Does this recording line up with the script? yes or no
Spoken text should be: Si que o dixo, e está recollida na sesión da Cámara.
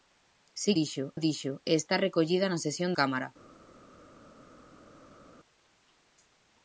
no